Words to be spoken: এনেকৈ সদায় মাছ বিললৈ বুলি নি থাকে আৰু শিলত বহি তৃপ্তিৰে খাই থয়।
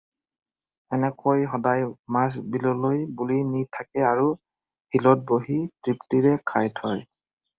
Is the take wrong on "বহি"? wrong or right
right